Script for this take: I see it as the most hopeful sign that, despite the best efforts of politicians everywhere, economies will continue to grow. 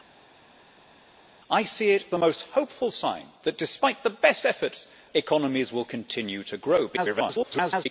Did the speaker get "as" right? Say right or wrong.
wrong